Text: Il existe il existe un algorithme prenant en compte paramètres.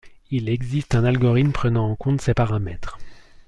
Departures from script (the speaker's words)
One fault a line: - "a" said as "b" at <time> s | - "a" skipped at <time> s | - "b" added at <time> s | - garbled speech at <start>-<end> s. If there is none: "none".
- "il existe" skipped at 0.9 s
- "ces" added at 2.2 s